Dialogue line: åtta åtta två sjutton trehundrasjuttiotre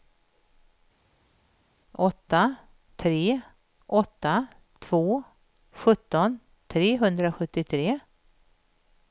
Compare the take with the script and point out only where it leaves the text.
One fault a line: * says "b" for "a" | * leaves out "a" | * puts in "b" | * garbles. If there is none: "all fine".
* puts in "tre"